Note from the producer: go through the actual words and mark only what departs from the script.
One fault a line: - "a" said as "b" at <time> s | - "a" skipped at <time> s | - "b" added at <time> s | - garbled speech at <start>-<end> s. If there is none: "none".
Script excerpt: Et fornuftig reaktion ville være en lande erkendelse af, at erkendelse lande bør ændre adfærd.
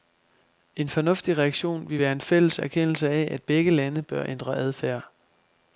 - "Et" said as "En" at 0.8 s
- "lande" said as "fælles" at 2.2 s
- "erkendelse" said as "begge" at 3.4 s